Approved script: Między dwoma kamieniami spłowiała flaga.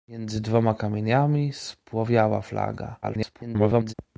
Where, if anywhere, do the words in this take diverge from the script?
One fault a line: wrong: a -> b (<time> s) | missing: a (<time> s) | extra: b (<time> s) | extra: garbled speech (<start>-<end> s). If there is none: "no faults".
extra: garbled speech (3.0-3.9 s)